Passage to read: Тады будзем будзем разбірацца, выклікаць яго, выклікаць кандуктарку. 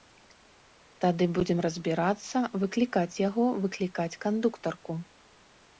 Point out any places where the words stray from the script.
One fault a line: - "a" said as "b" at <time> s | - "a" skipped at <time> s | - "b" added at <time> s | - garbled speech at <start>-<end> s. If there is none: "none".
- "будзем" skipped at 1.6 s